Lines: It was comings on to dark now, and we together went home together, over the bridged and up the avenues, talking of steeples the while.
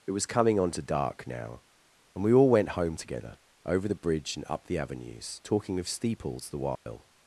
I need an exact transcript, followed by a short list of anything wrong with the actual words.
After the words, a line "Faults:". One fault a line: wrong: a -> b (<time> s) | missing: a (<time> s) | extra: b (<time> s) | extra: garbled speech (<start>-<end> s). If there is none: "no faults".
It was coming on to dark now, and we all went home together, over the bridge and up the avenues, talking of steeples the while.
Faults:
wrong: comings -> coming (0.2 s)
wrong: together -> all (2.3 s)
wrong: bridged -> bridge (4.0 s)